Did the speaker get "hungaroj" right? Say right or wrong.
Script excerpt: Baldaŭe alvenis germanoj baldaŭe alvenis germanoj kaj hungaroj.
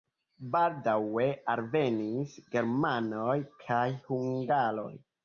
right